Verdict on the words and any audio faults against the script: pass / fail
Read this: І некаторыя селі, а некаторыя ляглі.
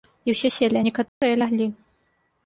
fail